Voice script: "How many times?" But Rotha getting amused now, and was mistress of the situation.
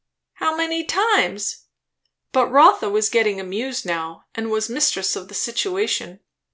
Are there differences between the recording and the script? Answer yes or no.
yes